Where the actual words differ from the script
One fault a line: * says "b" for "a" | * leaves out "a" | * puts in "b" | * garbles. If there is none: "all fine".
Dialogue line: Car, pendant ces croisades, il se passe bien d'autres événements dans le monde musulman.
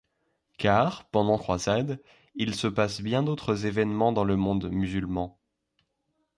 * leaves out "ces"